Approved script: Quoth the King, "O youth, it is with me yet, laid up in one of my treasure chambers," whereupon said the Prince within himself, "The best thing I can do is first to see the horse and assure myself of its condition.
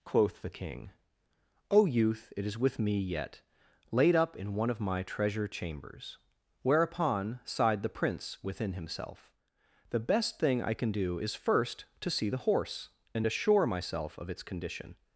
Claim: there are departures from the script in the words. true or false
true